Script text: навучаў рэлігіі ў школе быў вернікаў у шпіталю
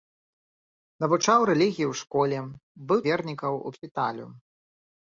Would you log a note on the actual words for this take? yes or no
no